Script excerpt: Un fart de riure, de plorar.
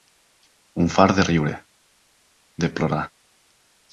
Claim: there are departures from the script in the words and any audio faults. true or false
false